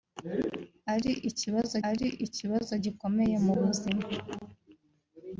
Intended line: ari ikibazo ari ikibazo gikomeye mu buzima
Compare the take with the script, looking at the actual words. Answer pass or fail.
pass